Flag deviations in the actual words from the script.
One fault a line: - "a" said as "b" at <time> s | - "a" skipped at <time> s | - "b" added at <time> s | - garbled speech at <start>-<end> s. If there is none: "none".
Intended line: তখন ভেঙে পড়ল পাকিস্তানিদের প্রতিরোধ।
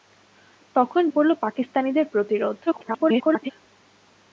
- "ভেঙে" skipped at 1.0 s
- garbled speech at 2.7-3.5 s